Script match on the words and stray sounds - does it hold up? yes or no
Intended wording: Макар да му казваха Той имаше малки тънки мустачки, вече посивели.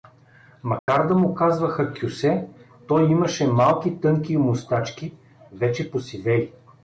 no